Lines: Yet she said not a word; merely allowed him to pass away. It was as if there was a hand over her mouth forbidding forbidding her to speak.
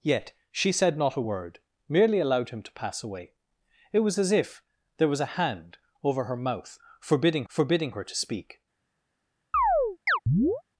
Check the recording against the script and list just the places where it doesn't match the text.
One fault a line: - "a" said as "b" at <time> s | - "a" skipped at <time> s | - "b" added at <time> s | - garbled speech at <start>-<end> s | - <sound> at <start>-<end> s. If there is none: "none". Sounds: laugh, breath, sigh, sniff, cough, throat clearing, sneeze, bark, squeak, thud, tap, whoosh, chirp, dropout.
- chirp at 9.5-10.6 s